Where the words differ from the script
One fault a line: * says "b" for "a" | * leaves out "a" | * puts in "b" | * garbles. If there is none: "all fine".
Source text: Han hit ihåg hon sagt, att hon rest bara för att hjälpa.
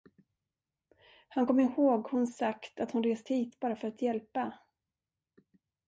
* says "kom" for "hit"
* puts in "hit"